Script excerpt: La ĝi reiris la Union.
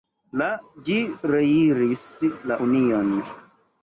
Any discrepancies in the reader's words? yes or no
no